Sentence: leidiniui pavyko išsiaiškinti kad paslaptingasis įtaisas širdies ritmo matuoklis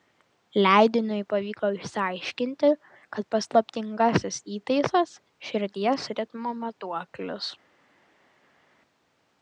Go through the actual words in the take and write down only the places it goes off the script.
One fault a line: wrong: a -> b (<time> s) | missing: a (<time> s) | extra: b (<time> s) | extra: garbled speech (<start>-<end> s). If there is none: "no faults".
no faults